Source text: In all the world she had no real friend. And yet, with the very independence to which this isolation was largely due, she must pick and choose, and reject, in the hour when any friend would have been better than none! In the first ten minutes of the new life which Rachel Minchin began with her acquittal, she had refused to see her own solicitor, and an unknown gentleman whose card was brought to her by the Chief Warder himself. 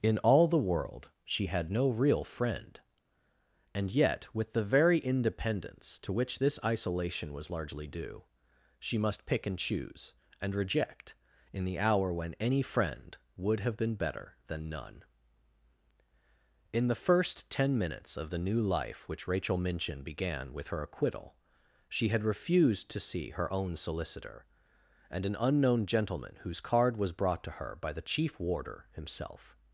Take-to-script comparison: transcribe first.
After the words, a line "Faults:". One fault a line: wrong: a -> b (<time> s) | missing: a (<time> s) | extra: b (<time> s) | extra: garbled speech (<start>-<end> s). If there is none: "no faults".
In all the world she had no real friend. And yet, with the very independence to which this isolation was largely due, she must pick and choose, and reject, in the hour when any friend would have been better than none! In the first ten minutes of the new life which Rachel Minchin began with her acquittal, she had refused to see her own solicitor, and an unknown gentleman whose card was brought to her by the Chief Warder himself.
Faults:
no faults